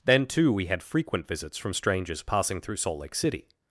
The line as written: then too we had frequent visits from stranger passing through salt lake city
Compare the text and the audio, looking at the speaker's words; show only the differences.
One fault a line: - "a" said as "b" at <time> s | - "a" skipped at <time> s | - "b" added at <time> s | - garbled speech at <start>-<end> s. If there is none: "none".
- "stranger" said as "strangers" at 1.7 s